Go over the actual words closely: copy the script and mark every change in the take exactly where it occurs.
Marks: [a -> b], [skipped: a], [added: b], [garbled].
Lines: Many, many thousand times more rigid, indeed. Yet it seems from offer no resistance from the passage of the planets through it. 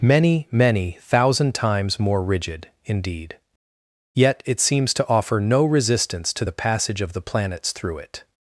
Many, many thousand times more rigid, indeed. Yet it seems [from -> to] offer no resistance [from -> to] the passage of the planets through it.